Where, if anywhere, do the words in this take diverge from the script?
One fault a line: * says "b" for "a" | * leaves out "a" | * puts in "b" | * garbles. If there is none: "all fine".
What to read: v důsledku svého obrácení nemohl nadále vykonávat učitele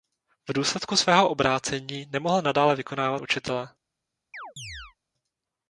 all fine